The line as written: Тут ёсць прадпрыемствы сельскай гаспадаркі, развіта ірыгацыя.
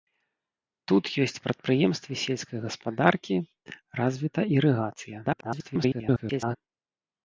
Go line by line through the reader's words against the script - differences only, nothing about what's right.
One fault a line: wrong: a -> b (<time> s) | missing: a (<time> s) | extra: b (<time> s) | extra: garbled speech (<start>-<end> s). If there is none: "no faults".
extra: garbled speech (5.2-6.6 s)